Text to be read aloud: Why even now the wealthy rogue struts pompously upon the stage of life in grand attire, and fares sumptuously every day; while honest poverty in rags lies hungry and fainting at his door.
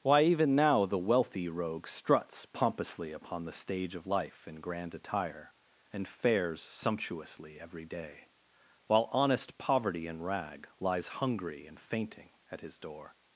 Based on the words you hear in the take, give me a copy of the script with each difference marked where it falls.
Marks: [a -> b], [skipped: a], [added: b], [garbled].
Why even now the wealthy rogue struts pompously upon the stage of life in grand attire, and fares sumptuously every day; while honest poverty in [rags -> rag] lies hungry and fainting at his door.